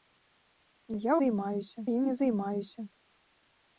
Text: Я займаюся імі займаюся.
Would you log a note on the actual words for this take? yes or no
no